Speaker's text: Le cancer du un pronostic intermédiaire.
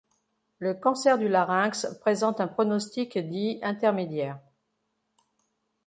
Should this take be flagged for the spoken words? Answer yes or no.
yes